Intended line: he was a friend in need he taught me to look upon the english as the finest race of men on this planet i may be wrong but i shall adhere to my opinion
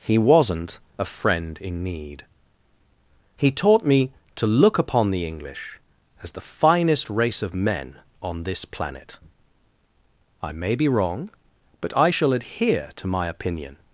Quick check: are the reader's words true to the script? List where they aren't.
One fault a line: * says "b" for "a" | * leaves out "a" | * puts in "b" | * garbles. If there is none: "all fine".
* says "wasn't" for "was"